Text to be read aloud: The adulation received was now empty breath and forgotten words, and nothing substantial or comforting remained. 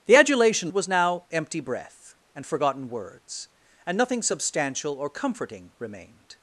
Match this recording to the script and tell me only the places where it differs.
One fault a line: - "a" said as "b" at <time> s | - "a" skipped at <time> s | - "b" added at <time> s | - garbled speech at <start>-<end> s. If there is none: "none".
- "received" skipped at 0.7 s